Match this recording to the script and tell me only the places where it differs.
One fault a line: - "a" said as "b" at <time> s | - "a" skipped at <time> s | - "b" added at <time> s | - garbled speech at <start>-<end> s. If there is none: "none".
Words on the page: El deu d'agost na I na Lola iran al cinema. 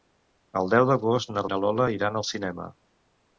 none